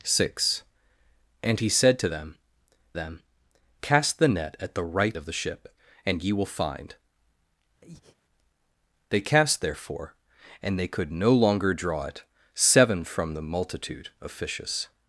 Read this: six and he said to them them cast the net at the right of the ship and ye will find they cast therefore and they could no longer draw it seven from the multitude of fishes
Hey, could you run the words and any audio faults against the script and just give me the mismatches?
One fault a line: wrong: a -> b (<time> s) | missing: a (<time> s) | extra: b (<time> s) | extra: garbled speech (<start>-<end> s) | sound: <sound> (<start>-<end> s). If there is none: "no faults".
sound: breath (7.8-8.2 s)